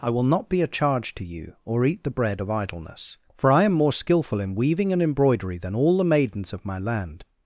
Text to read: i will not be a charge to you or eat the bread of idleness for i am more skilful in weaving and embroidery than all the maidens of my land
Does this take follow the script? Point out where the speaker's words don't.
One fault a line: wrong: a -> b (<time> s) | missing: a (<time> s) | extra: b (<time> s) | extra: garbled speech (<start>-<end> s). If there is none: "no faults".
no faults